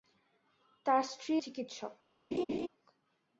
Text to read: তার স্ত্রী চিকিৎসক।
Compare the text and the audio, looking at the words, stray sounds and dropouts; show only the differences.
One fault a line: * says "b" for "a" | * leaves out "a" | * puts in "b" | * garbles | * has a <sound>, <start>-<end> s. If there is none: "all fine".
* has a laugh, 2.3-2.7 s